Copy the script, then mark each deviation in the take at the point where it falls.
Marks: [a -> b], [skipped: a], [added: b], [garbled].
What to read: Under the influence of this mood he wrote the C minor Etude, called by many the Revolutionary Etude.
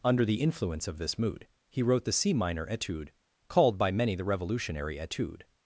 Under the influence of this mood he wrote the C minor Etude, called by many the Revolutionary Etude.